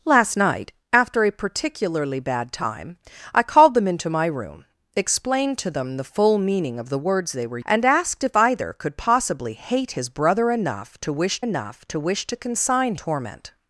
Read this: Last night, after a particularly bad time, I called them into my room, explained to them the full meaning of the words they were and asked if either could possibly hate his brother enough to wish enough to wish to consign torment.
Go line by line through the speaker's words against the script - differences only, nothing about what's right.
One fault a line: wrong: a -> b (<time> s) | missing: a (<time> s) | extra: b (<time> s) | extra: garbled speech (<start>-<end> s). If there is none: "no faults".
no faults